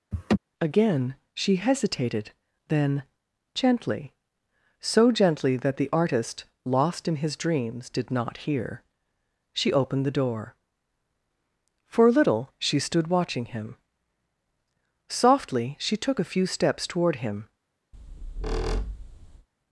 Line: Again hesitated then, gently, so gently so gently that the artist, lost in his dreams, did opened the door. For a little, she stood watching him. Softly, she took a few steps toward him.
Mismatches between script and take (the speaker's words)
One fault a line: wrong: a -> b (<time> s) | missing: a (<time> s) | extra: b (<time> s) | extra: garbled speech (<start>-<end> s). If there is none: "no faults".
extra: she (1.3 s)
missing: so gently (5.6 s)
extra: not hear she (8.1 s)